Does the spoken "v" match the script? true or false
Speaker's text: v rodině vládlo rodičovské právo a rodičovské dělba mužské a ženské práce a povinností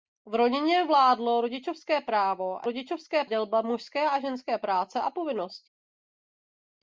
true